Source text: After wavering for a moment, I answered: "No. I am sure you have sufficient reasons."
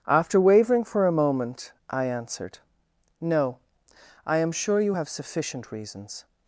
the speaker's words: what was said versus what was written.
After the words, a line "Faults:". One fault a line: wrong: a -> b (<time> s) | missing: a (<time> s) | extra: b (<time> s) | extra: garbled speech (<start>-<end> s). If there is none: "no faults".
After wavering for a moment, I answered: "No. I am sure you have sufficient reasons."
Faults:
no faults